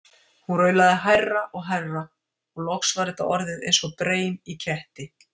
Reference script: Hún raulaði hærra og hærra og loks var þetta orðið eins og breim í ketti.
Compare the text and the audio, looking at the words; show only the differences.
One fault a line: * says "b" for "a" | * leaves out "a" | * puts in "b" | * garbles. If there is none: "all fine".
all fine